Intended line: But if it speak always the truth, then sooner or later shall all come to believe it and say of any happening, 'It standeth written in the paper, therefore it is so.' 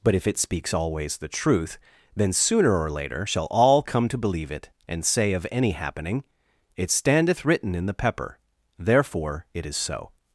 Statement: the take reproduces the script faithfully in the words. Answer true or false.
false